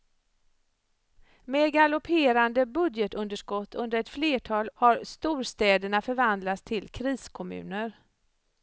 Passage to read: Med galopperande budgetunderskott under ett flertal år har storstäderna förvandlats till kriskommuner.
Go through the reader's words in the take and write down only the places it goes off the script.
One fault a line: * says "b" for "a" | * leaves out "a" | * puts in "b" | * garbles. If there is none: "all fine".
* leaves out "år"